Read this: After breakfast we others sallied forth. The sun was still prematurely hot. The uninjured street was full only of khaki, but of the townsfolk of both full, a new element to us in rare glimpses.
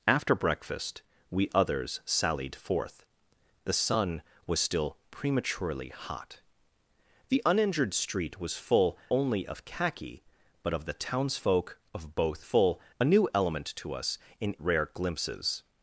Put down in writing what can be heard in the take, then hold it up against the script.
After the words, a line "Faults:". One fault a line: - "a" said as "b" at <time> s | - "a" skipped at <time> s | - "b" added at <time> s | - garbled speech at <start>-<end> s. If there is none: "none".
After breakfast we others sallied forth. The sun was still prematurely hot. The uninjured street was full only of khaki, but of the townsfolk of both full, a new element to us in rare glimpses.
Faults:
none